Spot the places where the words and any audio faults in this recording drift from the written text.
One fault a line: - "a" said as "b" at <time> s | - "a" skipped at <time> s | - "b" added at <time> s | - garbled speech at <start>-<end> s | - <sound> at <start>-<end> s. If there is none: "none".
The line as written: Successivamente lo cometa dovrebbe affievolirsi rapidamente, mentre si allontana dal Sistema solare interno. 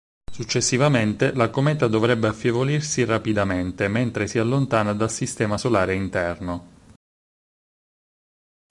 - "lo" said as "la" at 1.3 s